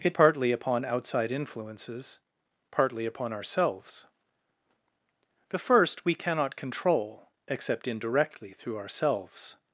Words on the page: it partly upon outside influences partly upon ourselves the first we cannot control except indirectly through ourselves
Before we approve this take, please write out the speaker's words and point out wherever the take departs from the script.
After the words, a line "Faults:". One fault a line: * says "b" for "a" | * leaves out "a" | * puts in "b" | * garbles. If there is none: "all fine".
it partly upon outside influences partly upon ourselves the first we cannot control except indirectly through ourselves
Faults:
all fine